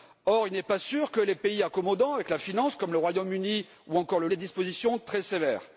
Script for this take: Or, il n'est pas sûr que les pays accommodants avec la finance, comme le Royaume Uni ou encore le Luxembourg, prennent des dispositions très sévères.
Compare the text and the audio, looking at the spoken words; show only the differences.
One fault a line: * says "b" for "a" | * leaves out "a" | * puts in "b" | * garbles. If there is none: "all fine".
* leaves out "Luxembourg prennent"